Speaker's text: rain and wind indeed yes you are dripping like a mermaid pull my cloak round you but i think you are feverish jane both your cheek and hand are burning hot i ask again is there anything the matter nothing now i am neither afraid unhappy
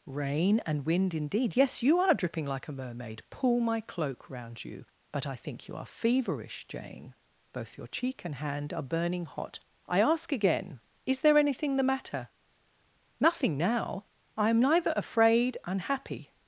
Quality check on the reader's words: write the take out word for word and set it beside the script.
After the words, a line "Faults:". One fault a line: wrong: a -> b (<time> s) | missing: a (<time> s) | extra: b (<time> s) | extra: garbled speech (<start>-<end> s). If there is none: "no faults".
rain and wind indeed yes you are dripping like a mermaid pull my cloak round you but i think you are feverish jane both your cheek and hand are burning hot i ask again is there anything the matter nothing now i am neither afraid unhappy
Faults:
no faults